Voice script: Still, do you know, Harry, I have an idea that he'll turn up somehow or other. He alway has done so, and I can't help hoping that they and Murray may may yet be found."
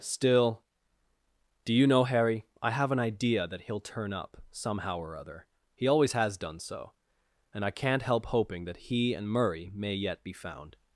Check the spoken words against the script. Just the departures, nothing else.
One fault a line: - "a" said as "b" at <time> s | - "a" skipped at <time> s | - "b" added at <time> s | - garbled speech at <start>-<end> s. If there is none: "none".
- "alway" said as "always" at 5.9 s
- "they" said as "he" at 8.8 s
- "may" skipped at 9.9 s